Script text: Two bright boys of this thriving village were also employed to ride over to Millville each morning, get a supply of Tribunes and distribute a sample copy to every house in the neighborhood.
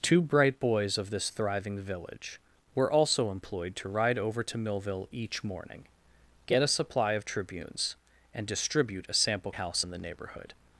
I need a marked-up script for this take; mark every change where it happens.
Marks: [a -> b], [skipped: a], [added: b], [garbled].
Two bright boys of this thriving village were also employed to ride over to Millville each morning, get a supply of Tribunes and distribute a sample [skipped: copy to every] house in the neighborhood.